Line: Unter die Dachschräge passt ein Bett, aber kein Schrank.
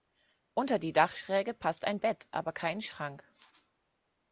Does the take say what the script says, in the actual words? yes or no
yes